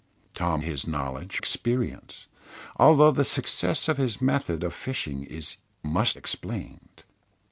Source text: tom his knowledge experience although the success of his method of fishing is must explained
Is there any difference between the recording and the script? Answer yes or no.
no